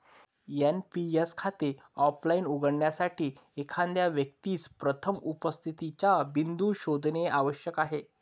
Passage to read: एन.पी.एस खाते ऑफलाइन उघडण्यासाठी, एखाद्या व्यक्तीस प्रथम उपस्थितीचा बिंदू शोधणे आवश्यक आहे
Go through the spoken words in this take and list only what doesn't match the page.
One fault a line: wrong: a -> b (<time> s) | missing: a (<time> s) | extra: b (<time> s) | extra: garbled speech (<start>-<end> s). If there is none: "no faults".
no faults